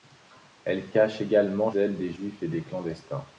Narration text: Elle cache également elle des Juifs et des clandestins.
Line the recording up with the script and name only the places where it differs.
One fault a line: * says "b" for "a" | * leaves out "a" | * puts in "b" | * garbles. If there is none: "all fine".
all fine